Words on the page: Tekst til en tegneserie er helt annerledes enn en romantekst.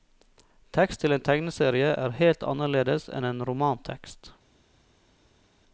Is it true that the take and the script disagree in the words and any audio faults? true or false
false